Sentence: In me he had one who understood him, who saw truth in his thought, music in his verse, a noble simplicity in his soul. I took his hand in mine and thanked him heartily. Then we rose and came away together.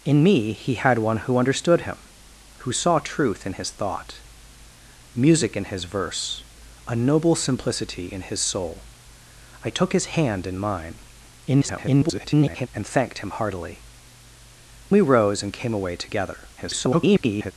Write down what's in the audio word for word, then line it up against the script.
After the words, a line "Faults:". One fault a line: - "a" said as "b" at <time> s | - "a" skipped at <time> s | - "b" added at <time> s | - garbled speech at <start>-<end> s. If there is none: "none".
In me he had one who understood him, who saw truth in his thought, music in his verse, a noble simplicity in his soul. I took his hand in mine [garbled] and thanked him heartily. We rose and came away together. [garbled]
Faults:
- garbled speech at 11.5-12.7 s
- "Then" skipped at 13.8 s
- garbled speech at 16.6-17.5 s